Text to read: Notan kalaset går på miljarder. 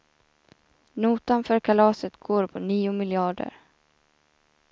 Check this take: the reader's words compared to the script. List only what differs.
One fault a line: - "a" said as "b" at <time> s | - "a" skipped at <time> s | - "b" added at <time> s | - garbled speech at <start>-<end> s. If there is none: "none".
- "för" added at 1.4 s
- "nio" added at 2.6 s